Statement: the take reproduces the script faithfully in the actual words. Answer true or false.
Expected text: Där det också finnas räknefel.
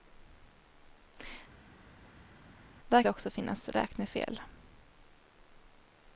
true